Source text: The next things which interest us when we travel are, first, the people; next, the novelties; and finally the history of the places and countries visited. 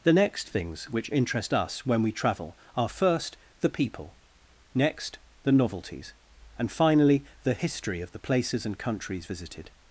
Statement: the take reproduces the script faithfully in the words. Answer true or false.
true